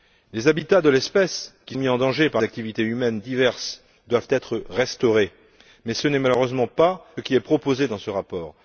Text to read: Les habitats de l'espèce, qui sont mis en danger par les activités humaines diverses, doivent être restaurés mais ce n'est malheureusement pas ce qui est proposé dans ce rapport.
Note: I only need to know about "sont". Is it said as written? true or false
false